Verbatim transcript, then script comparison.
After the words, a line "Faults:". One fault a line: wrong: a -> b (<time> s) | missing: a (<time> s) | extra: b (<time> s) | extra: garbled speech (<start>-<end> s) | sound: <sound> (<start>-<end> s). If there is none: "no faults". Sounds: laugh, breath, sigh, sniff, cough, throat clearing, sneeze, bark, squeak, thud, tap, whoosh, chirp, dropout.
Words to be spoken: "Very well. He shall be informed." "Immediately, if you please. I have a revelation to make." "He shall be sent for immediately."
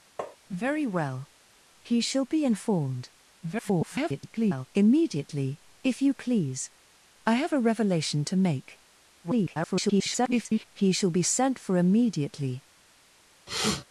"Very well. He shall be informed." [garbled] "Immediately, if you please. I have a revelation to make." [garbled] "He shall be sent for immediately."
Faults:
sound: tap (0.2-0.4 s)
extra: garbled speech (3.4-4.7 s)
extra: garbled speech (9.2-10.7 s)
sound: sniff (13.5-13.8 s)